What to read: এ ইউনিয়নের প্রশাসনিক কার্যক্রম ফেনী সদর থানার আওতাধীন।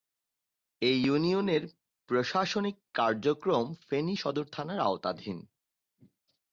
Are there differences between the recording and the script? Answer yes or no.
no